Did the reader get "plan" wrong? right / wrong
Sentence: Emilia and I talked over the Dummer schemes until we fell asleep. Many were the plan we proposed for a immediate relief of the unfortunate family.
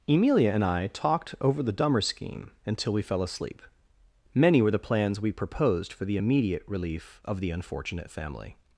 wrong